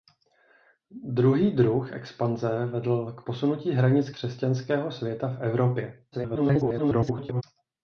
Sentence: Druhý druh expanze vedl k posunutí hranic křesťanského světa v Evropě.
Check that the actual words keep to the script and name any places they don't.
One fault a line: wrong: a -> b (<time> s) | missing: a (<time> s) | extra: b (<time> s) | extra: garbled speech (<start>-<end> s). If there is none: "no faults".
extra: garbled speech (6.1-7.4 s)